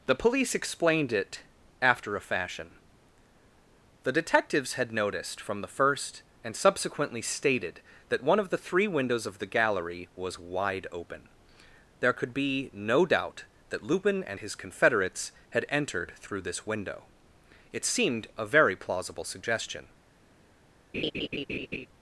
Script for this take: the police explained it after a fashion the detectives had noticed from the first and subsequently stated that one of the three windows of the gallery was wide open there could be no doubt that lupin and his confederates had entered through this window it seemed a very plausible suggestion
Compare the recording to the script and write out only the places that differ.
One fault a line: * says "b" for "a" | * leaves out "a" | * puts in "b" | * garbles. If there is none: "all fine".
all fine